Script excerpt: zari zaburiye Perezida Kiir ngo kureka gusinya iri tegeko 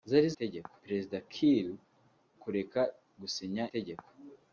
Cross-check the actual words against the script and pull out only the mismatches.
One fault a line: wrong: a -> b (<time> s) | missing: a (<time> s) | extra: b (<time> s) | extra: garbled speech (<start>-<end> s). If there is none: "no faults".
wrong: zaburiye -> tegeko (0.4 s)
missing: ngo (1.7 s)
missing: iri (3.6 s)